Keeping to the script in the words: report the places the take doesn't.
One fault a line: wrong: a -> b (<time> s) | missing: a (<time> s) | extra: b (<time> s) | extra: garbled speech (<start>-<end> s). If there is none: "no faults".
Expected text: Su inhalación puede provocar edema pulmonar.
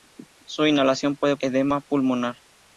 missing: provocar (1.4 s)